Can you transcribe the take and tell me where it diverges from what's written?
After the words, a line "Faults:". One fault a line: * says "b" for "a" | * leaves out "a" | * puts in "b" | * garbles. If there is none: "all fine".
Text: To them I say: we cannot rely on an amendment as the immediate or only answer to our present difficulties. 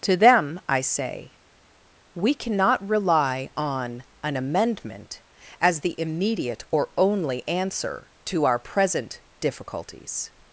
To them I say: we cannot rely on an amendment as the immediate or only answer to our present difficulties.
Faults:
all fine